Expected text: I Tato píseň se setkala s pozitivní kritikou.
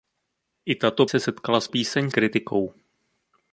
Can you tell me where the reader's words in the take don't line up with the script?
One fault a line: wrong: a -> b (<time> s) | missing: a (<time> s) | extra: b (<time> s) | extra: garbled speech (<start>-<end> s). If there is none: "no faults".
missing: píseň (1.1 s)
wrong: pozitivní -> píseň (1.7 s)